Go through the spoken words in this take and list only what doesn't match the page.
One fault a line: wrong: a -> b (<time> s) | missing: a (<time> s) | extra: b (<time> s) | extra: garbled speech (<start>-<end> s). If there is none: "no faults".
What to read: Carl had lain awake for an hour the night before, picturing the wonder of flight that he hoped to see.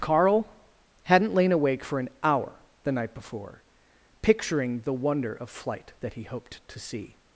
wrong: had -> hadn't (1.0 s)